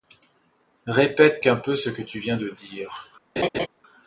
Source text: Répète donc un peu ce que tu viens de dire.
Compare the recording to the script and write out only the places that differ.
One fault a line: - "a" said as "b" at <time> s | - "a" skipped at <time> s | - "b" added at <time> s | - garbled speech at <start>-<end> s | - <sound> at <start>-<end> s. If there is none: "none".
- "donc" skipped at 1.4 s
- laugh at 3.4-3.7 s